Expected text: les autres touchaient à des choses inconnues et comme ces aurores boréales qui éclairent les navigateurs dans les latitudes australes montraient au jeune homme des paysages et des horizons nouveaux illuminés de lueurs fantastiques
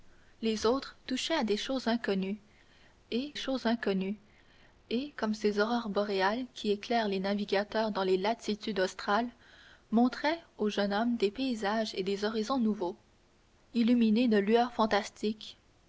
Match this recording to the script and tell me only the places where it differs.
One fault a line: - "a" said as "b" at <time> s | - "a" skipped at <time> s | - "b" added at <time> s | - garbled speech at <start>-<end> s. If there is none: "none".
- "choses inconnues et" added at 3.4 s